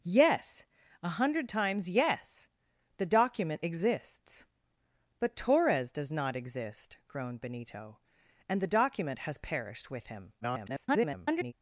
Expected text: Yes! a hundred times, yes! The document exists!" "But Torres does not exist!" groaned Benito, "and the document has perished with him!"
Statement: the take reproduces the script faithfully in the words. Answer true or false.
false